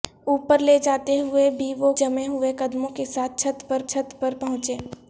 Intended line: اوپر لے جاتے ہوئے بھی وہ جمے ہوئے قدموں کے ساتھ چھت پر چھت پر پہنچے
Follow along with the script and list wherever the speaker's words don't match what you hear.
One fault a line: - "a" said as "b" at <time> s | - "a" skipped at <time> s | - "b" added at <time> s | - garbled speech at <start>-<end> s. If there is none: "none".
none